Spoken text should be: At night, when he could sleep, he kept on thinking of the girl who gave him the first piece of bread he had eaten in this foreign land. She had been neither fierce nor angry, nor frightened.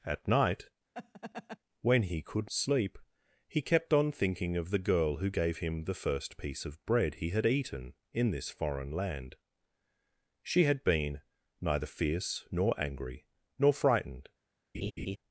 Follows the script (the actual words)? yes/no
yes